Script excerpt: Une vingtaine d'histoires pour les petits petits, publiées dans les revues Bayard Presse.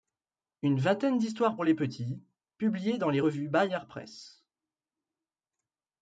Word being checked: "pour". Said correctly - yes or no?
yes